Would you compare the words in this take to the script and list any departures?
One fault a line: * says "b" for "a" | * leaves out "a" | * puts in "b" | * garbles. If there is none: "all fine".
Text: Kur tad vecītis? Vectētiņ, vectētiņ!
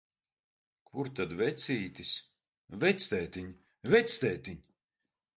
all fine